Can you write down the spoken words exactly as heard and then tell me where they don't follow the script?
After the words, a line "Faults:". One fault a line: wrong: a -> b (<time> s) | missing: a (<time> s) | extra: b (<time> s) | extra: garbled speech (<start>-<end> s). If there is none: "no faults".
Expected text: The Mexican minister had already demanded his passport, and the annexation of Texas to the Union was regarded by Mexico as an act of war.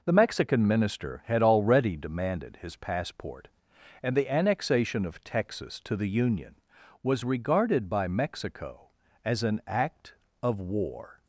The Mexican minister had already demanded his passport, and the annexation of Texas to the Union was regarded by Mexico as an act of war.
Faults:
no faults